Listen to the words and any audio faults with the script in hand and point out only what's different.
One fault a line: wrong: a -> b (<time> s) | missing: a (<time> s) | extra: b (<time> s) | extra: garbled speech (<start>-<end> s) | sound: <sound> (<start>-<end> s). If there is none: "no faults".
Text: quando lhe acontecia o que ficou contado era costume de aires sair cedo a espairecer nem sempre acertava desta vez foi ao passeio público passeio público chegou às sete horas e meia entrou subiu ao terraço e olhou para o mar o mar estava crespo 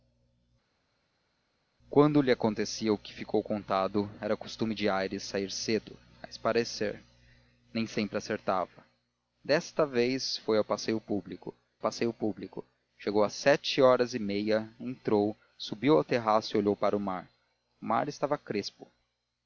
no faults